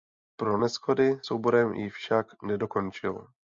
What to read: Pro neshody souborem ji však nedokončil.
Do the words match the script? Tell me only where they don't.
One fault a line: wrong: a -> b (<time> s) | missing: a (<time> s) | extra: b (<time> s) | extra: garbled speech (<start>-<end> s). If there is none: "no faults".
no faults